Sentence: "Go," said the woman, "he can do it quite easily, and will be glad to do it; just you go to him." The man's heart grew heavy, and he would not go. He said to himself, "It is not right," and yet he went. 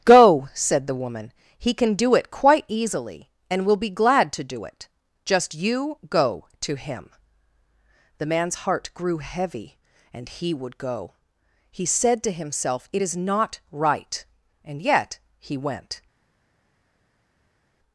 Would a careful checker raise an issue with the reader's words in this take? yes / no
yes